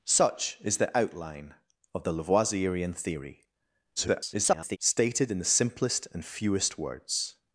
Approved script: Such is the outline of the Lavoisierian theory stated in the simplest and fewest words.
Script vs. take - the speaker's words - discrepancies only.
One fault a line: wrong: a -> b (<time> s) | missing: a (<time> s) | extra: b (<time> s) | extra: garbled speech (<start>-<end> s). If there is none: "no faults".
extra: garbled speech (4.0-4.8 s)